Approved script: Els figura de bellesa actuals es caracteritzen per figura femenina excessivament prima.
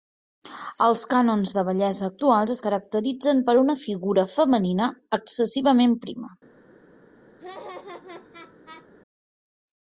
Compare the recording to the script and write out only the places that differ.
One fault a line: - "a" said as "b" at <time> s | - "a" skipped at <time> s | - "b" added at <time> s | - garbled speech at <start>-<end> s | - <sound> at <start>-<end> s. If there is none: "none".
- "figura" said as "cànons" at 1.1 s
- "una" added at 3.6 s
- laugh at 7.4-8.9 s